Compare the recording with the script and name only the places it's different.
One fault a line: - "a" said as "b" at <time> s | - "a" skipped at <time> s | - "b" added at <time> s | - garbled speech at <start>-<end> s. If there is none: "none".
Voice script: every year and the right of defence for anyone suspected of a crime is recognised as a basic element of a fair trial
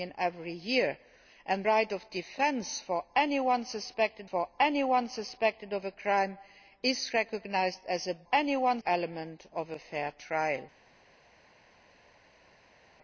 - "the" skipped at 1.6 s
- "for anyone suspected" added at 4.2 s
- "basic" said as "anyone" at 8.3 s